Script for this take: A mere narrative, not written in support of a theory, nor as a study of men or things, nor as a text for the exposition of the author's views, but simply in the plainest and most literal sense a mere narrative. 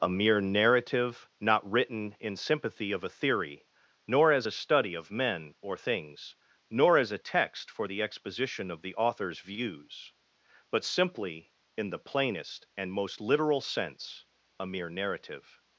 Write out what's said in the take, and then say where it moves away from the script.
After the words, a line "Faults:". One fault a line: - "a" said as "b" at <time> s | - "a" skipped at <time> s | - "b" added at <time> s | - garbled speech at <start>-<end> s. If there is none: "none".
A mere narrative, not written in sympathy of a theory, nor as a study of men or things, nor as a text for the exposition of the author's views, but simply in the plainest and most literal sense a mere narrative.
Faults:
- "support" said as "sympathy" at 2.4 s